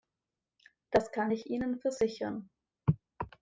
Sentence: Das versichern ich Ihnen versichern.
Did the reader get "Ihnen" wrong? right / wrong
right